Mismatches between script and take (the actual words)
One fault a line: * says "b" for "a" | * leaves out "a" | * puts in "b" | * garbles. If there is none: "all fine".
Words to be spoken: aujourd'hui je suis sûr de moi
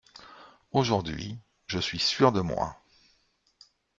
all fine